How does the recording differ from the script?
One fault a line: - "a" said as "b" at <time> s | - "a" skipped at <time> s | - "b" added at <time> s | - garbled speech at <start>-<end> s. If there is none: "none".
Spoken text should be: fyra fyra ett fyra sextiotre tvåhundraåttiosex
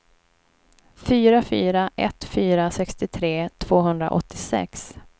none